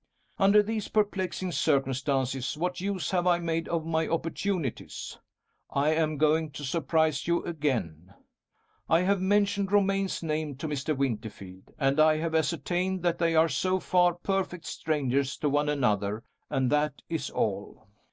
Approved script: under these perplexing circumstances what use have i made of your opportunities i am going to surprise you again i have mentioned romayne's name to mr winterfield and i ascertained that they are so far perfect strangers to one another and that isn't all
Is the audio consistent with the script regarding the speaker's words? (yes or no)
no